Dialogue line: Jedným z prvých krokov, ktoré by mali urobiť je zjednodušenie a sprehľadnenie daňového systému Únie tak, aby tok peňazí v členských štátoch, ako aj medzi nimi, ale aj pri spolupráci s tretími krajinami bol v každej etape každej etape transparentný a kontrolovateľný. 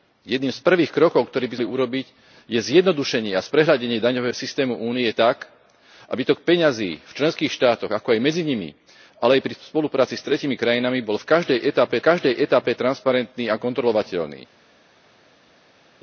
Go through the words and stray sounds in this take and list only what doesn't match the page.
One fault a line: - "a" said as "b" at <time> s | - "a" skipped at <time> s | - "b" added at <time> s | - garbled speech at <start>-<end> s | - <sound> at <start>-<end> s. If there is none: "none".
none